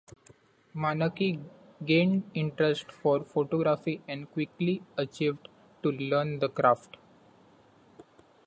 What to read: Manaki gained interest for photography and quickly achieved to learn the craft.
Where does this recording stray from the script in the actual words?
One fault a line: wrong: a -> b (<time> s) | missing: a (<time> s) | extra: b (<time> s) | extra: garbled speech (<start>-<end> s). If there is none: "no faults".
no faults